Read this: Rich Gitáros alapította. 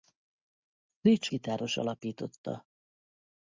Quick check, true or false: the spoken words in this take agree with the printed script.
true